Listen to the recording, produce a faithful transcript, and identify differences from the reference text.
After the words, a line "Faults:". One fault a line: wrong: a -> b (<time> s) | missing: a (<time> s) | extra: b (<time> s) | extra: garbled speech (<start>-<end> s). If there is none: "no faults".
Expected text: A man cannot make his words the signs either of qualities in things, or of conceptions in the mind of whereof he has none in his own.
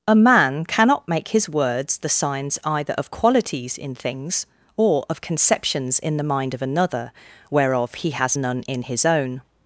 A man cannot make his words the signs either of qualities in things, or of conceptions in the mind of another, whereof he has none in his own.
Faults:
extra: another (6.6 s)